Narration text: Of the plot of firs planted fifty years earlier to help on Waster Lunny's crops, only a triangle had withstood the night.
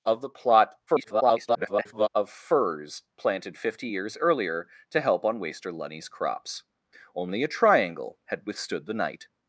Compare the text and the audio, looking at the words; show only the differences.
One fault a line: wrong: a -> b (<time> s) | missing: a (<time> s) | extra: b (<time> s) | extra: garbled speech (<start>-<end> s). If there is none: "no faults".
extra: garbled speech (0.9-2.1 s)